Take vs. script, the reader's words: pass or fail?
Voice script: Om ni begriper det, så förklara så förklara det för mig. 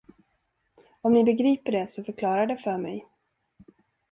fail